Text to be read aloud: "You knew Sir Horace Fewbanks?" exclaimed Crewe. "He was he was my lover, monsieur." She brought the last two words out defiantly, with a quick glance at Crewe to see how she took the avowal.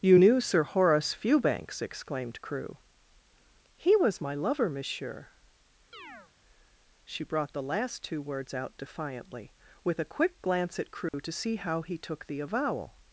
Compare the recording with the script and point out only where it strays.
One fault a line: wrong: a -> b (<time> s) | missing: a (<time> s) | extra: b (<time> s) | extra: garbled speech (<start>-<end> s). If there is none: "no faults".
missing: he was (4.2 s)
wrong: she -> he (11.8 s)